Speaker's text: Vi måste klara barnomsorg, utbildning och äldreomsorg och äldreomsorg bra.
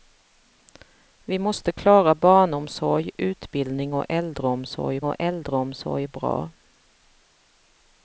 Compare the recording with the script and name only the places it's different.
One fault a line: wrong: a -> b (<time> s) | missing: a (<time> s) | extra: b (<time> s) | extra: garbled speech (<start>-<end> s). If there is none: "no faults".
no faults